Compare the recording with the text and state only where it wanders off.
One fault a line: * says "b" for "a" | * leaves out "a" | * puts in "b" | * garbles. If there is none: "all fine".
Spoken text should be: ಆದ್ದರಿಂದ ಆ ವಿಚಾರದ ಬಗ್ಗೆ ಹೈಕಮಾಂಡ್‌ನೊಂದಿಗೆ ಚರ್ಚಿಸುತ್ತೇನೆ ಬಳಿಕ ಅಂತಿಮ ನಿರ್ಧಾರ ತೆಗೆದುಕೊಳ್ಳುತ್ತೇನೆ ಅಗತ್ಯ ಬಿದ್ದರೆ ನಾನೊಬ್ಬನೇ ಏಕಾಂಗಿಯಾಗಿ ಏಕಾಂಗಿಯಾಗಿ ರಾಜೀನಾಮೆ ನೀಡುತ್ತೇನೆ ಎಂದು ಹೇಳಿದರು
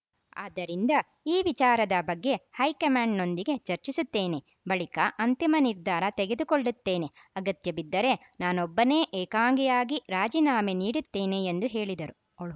* says "ಈ" for "ಆ"
* leaves out "ಏಕಾಂಗಿಯಾಗಿ"